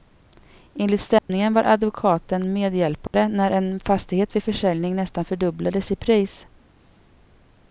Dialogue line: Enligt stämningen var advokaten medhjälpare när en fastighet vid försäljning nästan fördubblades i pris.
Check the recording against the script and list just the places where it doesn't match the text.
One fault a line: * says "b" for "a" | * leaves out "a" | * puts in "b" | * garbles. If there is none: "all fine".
all fine